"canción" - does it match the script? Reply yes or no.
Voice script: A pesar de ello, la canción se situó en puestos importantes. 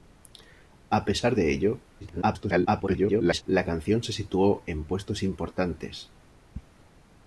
yes